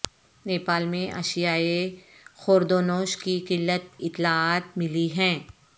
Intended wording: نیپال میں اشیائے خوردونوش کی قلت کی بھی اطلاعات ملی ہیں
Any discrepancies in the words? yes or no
yes